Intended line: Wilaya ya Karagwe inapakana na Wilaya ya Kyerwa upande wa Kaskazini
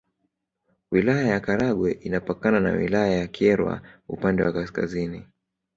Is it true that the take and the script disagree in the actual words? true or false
false